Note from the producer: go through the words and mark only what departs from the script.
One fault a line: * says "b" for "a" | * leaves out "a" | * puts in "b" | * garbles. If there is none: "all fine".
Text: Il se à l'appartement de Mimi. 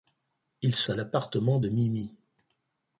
all fine